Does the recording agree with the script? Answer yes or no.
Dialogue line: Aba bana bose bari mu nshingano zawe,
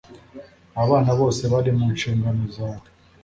yes